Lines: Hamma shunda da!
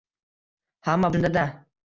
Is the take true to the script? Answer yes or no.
yes